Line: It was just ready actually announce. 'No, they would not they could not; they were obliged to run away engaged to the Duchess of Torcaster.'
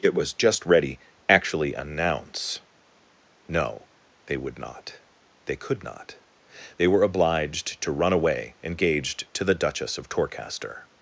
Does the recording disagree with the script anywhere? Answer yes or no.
no